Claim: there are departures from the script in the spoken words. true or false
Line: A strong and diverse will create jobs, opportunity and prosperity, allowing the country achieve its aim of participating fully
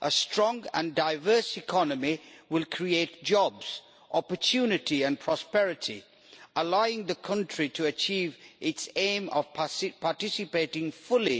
true